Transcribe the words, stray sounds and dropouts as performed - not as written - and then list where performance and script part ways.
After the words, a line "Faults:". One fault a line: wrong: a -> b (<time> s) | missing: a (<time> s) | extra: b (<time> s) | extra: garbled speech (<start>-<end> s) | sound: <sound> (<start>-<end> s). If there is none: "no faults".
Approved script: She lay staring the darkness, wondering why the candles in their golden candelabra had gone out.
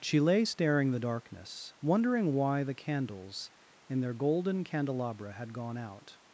She lay staring the darkness, wondering why the candles in their golden candelabra had gone out.
Faults:
no faults